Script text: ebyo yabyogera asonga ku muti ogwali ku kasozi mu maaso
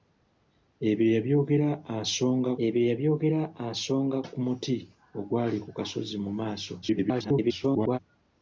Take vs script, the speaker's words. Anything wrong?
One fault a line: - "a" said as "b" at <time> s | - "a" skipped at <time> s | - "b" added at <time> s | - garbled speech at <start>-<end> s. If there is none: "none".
- "ebyo yabyogera asonga" added at 2.7 s
- garbled speech at 6.8-8.0 s